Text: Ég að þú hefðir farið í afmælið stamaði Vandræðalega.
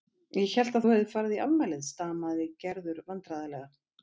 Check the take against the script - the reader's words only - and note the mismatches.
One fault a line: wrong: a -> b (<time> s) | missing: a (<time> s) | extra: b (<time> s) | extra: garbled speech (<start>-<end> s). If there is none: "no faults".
extra: hélt (0.5 s)
extra: Gerður (2.7 s)